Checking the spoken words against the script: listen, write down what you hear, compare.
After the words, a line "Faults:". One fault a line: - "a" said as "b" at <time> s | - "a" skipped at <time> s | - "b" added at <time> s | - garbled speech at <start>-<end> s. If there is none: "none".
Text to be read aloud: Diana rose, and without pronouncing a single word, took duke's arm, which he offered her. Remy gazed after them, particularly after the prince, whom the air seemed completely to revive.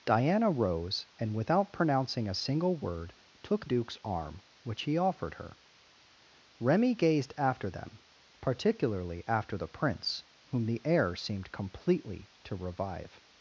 Diana rose, and without pronouncing a single word, took duke's arm, which he offered her. Remy gazed after them, particularly after the prince, whom the air seemed completely to revive.
Faults:
none